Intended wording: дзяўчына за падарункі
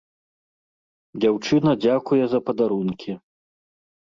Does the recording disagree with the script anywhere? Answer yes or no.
yes